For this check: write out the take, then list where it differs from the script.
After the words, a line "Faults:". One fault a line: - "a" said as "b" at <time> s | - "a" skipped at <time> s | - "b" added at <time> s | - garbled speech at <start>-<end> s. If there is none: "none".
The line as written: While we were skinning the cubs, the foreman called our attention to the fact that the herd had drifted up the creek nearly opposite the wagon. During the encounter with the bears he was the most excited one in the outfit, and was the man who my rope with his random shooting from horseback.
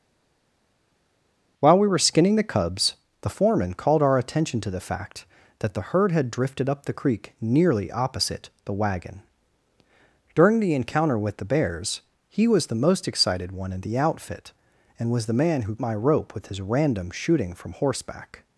While we were skinning the cubs, the foreman called our attention to the fact that the herd had drifted up the creek nearly opposite the wagon. During the encounter with the bears he was the most excited one in the outfit, and was the man who my rope with his random shooting from horseback.
Faults:
none